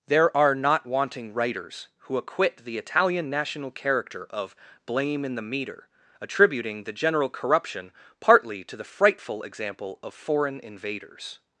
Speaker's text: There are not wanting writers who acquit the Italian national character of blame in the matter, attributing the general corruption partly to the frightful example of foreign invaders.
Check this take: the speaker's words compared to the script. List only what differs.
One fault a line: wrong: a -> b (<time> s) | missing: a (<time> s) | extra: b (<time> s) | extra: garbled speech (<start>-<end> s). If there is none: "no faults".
wrong: matter -> meter (5.4 s)